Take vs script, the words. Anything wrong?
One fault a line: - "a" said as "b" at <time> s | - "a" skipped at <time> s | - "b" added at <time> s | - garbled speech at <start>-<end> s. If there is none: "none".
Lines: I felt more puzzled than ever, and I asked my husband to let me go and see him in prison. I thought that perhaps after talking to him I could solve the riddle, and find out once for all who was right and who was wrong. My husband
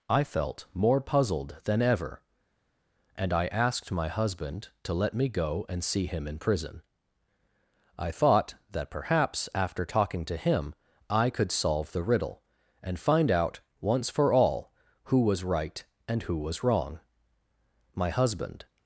none